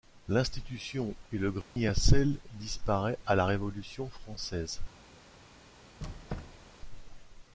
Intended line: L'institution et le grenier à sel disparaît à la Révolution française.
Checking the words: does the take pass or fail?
pass